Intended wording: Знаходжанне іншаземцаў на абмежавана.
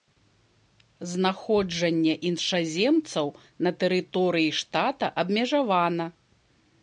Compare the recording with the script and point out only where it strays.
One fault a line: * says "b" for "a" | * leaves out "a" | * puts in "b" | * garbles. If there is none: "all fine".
* puts in "тэрыторыі штата"